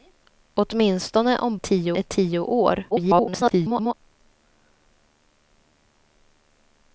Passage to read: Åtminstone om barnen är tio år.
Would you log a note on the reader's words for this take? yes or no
yes